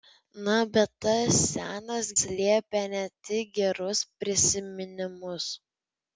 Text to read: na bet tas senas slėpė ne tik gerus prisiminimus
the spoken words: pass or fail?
pass